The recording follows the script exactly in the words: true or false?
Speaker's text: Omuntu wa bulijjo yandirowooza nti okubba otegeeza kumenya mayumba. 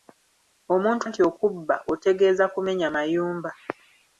false